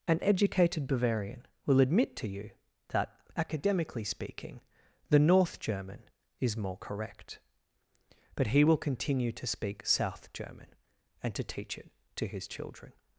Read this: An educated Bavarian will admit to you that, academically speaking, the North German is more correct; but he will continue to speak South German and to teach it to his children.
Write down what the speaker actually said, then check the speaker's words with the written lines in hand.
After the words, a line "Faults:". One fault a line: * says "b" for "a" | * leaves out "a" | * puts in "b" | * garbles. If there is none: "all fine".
An educated Bavarian will admit to you that, academically speaking, the North German is more correct; but he will continue to speak South German and to teach it to his children.
Faults:
all fine